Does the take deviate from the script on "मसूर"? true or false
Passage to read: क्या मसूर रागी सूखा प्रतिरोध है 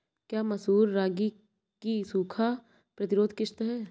false